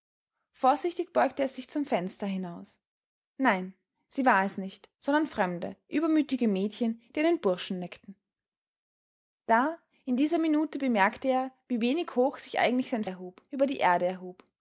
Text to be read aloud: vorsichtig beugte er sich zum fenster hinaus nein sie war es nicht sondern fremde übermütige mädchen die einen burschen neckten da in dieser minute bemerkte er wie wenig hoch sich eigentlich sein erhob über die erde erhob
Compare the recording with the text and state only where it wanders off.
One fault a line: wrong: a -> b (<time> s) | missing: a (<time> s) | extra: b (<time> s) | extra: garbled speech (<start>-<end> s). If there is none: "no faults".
no faults